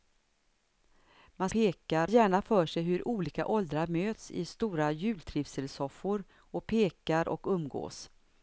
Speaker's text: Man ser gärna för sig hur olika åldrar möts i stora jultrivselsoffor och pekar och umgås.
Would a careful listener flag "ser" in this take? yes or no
yes